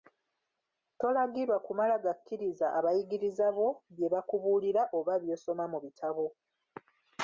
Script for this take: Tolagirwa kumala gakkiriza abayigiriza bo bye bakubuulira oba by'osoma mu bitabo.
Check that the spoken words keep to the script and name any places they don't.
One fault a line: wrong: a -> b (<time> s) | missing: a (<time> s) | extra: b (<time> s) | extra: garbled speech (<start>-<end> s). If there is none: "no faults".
no faults